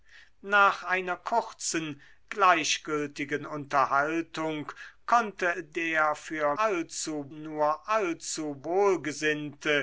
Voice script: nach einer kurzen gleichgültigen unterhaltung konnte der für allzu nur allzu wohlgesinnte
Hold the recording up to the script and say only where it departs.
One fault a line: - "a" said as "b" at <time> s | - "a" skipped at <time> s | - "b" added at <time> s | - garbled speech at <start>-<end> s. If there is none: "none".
none